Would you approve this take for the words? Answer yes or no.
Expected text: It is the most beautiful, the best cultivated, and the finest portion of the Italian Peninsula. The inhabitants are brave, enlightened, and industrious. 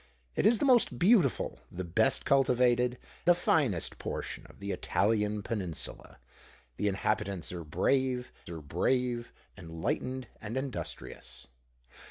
no